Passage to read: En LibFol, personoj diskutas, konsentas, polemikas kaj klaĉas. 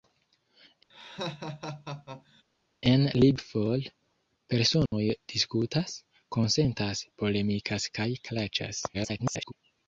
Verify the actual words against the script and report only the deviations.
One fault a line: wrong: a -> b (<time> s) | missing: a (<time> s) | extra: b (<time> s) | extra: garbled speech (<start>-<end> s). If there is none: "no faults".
extra: garbled speech (8.9-9.5 s)